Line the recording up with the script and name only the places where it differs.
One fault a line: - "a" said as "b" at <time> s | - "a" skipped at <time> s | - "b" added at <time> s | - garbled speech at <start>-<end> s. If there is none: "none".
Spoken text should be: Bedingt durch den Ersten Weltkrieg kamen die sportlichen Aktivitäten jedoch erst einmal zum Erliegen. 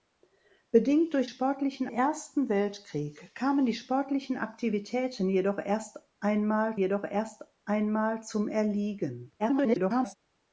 - "den" said as "sportlichen" at 1.2 s
- "jedoch erst einmal" added at 6.7 s
- garbled speech at 9.4-10.2 s